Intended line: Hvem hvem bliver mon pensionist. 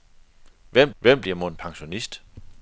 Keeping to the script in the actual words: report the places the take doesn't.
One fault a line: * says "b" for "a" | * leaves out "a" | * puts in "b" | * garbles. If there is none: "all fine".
all fine